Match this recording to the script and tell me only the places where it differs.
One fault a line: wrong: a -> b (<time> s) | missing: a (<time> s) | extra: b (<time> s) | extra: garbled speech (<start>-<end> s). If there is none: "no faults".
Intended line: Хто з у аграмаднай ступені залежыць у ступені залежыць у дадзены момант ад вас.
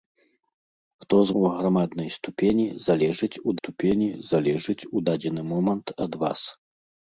no faults